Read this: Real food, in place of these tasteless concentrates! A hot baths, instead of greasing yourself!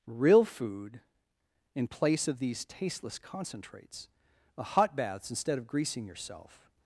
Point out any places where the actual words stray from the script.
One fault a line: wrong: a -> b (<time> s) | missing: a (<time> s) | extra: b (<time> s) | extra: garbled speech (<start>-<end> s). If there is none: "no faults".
no faults